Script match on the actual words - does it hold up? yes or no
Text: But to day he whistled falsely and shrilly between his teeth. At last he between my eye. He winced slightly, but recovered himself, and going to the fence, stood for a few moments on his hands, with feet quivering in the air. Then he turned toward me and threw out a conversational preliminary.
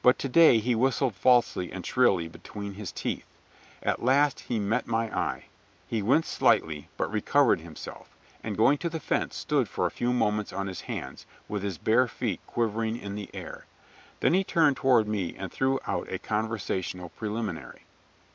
no